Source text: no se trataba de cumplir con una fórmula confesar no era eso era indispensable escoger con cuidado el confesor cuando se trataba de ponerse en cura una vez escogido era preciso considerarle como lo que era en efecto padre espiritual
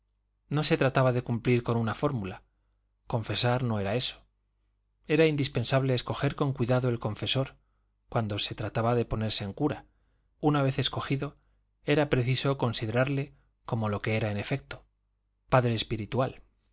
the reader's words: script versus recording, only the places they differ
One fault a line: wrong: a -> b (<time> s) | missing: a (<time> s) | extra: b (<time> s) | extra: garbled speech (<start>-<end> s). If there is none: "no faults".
no faults